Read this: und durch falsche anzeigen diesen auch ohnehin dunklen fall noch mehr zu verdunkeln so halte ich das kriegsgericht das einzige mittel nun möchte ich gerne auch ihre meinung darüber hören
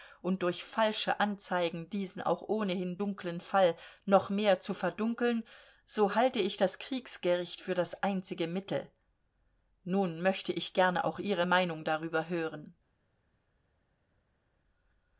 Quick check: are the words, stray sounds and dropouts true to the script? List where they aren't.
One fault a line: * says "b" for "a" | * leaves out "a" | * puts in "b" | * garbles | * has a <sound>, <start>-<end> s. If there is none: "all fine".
* puts in "für"